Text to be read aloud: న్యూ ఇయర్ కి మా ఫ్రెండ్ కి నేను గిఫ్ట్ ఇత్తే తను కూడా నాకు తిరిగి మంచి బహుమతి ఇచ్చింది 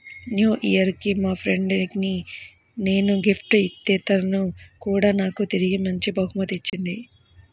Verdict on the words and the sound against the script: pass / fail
fail